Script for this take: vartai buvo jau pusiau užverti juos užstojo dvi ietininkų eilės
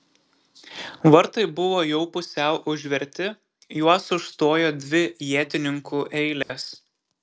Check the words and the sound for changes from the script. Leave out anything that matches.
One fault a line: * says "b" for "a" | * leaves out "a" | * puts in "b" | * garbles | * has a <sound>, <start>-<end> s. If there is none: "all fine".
* has a dropout, 6.4-6.5 s